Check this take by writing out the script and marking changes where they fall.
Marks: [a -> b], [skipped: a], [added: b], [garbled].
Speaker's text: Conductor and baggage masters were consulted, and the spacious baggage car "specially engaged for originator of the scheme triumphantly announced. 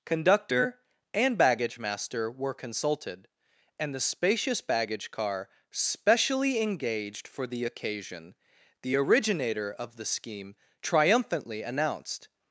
Conductor and baggage [masters -> master] were consulted, and the spacious baggage car "specially engaged for [added: the occasion the] originator of the scheme triumphantly announced.